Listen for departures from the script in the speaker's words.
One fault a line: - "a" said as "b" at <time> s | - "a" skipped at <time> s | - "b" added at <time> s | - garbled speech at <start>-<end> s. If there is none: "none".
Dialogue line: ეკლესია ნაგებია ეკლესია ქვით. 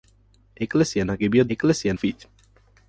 none